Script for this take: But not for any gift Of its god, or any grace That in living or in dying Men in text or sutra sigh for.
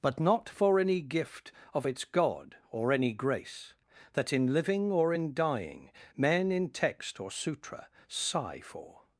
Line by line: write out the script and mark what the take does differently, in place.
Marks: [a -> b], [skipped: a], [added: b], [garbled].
But not for any gift Of its god, or any grace That in living or in dying Men in text or sutra sigh for.